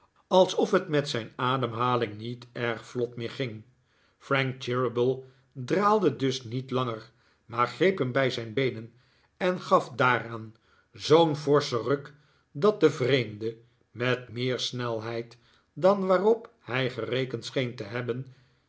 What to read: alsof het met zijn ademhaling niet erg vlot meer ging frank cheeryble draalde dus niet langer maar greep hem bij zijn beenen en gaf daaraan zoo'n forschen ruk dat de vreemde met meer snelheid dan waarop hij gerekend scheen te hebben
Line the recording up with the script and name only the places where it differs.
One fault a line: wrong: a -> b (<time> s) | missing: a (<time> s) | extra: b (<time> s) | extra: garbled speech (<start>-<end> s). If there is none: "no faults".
no faults